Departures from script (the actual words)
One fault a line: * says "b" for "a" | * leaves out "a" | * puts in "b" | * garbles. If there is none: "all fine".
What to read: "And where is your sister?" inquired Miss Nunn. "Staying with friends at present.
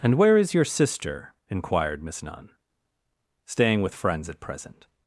all fine